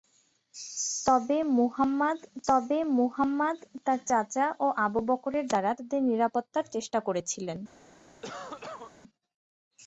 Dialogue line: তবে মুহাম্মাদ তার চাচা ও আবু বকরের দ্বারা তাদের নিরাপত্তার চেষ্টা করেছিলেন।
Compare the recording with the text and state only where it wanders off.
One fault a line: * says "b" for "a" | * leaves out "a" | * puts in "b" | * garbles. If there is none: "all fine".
* puts in "তবে মুহাম্মাদ"